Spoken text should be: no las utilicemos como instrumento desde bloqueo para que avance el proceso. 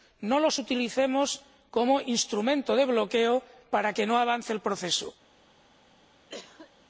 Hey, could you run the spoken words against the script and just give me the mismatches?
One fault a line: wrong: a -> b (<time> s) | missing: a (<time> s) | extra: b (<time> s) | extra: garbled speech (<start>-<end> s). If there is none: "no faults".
wrong: las -> los (0.4 s)
wrong: desde -> de (2.7 s)
extra: no (4.1 s)